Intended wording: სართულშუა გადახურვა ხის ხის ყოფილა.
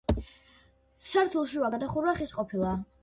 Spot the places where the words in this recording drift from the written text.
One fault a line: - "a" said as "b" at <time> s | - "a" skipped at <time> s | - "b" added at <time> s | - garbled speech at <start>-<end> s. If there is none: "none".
- "ხის" skipped at 2.3 s